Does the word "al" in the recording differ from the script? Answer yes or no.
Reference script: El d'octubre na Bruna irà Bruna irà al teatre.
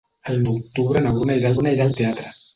no